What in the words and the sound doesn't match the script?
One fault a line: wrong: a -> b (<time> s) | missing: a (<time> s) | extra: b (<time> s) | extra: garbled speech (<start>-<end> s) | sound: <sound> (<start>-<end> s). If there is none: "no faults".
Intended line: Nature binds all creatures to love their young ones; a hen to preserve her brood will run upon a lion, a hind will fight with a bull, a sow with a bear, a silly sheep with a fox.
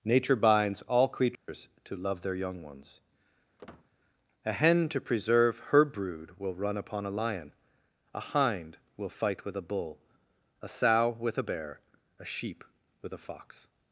sound: dropout (1.3-1.5 s)
sound: squeak (3.6-3.9 s)
missing: silly (12.2 s)